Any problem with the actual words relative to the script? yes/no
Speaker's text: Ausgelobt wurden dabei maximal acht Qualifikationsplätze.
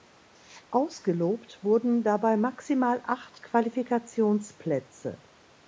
no